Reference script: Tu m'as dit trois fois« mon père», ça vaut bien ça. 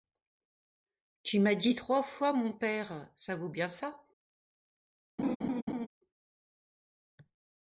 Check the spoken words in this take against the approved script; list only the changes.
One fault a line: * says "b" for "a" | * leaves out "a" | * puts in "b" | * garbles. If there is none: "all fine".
all fine